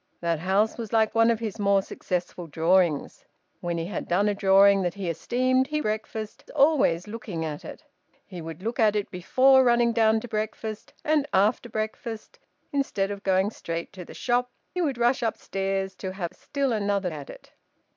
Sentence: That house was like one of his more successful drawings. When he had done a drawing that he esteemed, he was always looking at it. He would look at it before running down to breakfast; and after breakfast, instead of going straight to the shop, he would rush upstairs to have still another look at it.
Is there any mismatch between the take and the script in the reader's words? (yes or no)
yes